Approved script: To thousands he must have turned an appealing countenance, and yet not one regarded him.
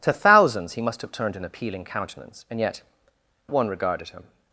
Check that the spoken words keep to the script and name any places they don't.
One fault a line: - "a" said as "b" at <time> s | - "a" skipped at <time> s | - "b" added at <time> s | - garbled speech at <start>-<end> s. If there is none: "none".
- "not" skipped at 2.8 s